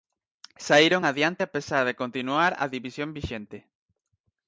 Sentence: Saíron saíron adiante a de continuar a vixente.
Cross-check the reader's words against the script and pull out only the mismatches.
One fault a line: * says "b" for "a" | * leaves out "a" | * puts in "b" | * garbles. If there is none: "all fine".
* leaves out "saíron"
* puts in "pesar"
* puts in "división"